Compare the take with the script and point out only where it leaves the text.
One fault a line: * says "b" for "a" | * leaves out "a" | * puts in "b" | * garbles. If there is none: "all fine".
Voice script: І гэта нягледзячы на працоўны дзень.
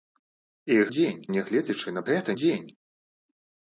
* says "дзень" for "гэта"
* says "гэта" for "працоўны"